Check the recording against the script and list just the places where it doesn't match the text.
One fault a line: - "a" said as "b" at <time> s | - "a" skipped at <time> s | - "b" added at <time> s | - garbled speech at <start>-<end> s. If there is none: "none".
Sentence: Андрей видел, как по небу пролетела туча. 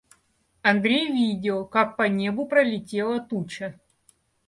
none